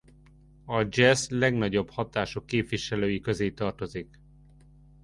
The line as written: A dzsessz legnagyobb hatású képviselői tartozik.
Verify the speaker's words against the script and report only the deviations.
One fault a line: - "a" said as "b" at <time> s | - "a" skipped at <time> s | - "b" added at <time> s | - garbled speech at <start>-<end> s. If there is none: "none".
- "közé" added at 3.2 s